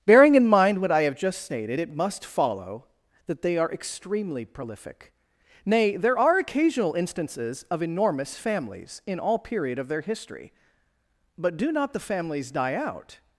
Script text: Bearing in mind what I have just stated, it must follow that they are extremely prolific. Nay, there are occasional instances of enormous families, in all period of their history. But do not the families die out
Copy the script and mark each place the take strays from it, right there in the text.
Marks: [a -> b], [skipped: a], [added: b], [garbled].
Bearing in mind what I have just stated, it must follow that they are extremely prolific. Nay, there are occasional instances of enormous families, in all period of their history. But do not the families die out